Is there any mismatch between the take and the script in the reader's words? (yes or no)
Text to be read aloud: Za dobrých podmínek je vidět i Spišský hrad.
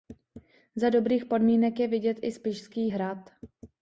no